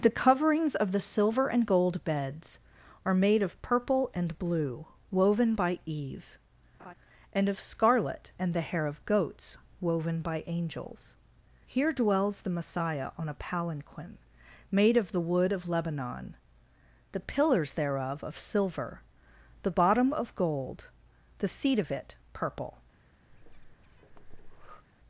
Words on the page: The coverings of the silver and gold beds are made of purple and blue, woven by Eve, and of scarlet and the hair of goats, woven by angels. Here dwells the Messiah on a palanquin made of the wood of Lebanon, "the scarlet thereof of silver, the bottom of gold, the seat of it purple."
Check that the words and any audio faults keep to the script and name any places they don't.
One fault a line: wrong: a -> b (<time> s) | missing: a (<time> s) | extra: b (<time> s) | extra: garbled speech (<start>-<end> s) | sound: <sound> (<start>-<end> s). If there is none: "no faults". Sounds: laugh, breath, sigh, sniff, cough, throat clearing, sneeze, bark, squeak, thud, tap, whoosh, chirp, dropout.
sound: laugh (6.8-6.9 s)
wrong: scarlet -> pillars (17.2 s)
sound: breath (23.3-24.8 s)